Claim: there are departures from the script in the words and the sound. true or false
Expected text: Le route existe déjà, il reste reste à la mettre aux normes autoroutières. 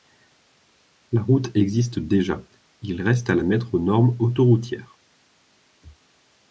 true